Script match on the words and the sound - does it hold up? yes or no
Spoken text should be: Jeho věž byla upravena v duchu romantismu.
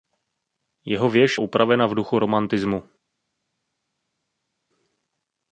no